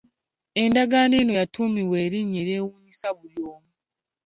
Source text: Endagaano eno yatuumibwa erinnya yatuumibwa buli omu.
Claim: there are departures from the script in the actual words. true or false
true